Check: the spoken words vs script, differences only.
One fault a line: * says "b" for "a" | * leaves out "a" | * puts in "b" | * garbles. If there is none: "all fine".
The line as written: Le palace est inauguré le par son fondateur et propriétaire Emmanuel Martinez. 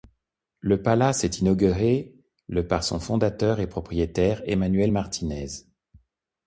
all fine